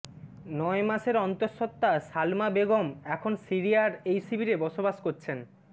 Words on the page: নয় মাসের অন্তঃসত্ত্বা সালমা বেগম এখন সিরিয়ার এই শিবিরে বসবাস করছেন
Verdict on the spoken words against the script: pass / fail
pass